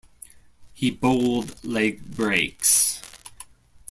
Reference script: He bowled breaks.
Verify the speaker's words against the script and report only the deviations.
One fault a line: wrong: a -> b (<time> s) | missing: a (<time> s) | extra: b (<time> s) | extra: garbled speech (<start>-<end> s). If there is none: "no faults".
extra: leg (1.6 s)